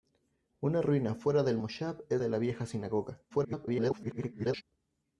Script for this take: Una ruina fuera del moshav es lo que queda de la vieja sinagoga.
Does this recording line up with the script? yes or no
no